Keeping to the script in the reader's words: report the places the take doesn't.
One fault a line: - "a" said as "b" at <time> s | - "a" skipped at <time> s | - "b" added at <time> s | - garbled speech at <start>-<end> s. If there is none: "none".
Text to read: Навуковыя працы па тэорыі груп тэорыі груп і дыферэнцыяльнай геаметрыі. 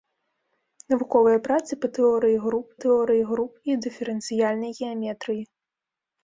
none